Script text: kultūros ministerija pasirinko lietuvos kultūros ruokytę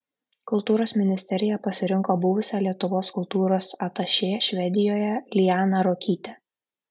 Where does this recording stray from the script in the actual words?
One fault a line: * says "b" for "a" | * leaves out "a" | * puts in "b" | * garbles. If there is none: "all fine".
* puts in "buvusią"
* puts in "atašė švedijoje lianą"